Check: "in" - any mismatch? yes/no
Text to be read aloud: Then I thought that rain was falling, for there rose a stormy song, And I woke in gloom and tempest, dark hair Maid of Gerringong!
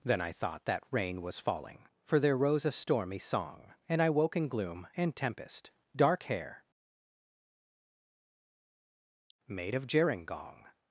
no